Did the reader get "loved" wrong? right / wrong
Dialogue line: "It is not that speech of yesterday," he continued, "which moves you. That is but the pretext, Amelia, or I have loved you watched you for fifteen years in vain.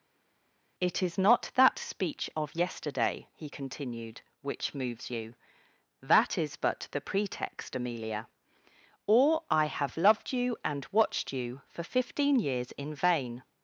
right